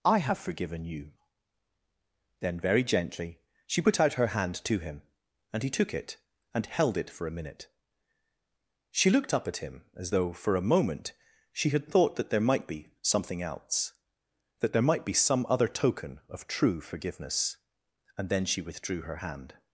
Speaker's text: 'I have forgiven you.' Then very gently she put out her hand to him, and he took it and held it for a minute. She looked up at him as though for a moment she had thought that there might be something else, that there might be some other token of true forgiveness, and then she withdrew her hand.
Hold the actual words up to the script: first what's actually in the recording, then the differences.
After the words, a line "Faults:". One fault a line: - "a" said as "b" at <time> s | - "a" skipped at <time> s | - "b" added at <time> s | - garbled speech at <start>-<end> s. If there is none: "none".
'I have forgiven you.' Then very gently she put out her hand to him, and he took it and held it for a minute. She looked up at him as though for a moment she had thought that there might be something else, that there might be some other token of true forgiveness, and then she withdrew her hand.
Faults:
none